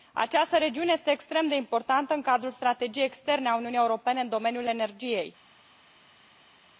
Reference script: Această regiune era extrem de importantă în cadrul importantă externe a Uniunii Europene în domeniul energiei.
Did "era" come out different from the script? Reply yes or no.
yes